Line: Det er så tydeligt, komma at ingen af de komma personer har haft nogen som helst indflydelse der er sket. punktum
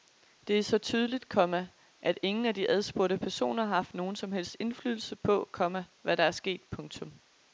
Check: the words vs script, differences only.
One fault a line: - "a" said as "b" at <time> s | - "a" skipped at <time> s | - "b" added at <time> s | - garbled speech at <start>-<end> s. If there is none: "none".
- "komma" said as "adspurgte" at 2.7 s
- "på komma hvad" added at 5.1 s